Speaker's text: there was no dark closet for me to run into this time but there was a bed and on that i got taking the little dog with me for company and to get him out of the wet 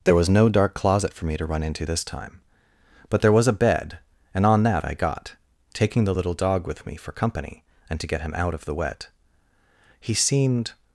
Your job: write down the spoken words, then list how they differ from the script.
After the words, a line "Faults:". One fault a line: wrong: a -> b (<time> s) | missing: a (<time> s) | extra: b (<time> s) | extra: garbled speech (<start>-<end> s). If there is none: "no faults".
there was no dark closet for me to run into this time but there was a bed and on that i got taking the little dog with me for company and to get him out of the wet he seemed
Faults:
extra: he seemed (10.0 s)